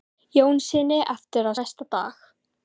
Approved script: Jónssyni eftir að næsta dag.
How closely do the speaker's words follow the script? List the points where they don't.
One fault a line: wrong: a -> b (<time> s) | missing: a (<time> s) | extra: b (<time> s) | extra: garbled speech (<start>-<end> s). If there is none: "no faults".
no faults